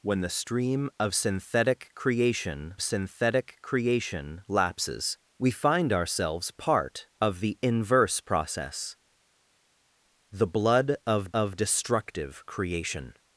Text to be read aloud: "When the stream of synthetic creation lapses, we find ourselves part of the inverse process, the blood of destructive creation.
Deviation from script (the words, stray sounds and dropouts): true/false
true